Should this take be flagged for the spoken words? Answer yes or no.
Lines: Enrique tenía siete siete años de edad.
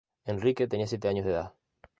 yes